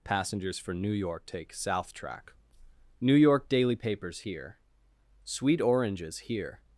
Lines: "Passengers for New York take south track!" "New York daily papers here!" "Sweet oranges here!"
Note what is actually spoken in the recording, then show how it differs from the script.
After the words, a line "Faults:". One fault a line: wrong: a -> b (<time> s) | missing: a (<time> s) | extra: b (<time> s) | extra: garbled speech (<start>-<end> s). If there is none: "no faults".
"Passengers for New York take south track!" "New York daily papers here!" "Sweet oranges here!"
Faults:
no faults